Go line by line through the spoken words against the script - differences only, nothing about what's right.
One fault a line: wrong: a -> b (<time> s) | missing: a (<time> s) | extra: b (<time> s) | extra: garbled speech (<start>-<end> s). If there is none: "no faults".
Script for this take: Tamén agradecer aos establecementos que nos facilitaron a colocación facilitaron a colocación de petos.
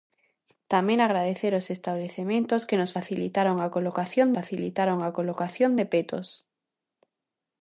no faults